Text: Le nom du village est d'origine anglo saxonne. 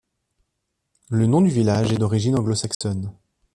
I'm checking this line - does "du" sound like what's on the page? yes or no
yes